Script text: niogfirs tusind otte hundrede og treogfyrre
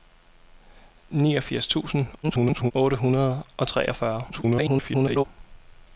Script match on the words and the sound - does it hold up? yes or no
no